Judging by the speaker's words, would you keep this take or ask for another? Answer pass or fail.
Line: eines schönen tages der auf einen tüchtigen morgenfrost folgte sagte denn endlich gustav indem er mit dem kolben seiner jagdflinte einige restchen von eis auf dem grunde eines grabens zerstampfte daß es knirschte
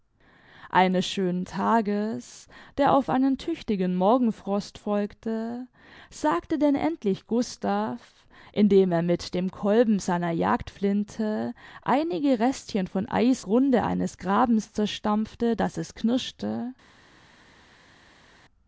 fail